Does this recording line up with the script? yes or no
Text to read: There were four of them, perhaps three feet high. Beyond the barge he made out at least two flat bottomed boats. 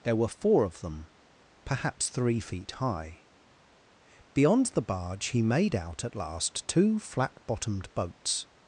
no